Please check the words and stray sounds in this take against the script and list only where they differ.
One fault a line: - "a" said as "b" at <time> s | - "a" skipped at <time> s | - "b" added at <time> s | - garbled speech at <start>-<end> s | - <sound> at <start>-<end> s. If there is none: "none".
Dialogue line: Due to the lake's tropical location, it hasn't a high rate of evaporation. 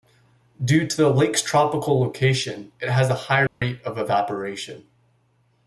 - "hasn't" said as "has" at 2.9 s
- dropout at 3.5-3.6 s